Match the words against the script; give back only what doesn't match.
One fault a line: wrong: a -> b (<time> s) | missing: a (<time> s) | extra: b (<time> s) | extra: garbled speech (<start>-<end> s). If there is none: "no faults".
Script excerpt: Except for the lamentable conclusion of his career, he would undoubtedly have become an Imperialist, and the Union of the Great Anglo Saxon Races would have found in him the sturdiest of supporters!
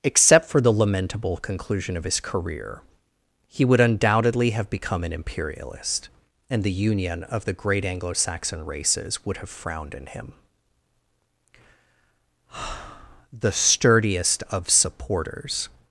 wrong: found -> frowned (9.5 s)